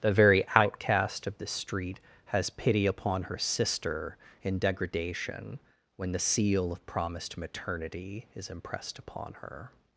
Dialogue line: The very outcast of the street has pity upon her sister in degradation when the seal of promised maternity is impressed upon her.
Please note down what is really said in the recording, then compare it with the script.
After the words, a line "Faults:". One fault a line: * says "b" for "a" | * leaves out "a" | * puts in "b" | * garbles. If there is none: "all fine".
The very outcast of the street has pity upon her sister in degradation when the seal of promised maternity is impressed upon her.
Faults:
all fine